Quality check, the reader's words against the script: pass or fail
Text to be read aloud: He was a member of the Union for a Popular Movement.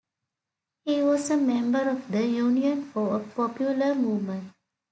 pass